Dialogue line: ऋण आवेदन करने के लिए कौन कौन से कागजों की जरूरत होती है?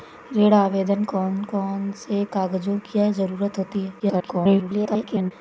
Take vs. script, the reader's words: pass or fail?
fail